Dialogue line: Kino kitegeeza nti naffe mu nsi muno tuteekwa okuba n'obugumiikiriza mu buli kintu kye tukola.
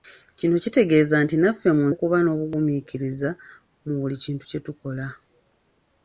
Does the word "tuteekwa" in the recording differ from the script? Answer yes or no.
yes